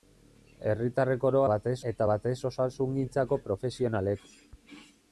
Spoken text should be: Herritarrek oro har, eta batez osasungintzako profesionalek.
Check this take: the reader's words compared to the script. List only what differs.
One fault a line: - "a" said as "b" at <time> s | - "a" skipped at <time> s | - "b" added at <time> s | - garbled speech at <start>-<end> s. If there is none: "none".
- "har" said as "batez" at 1.5 s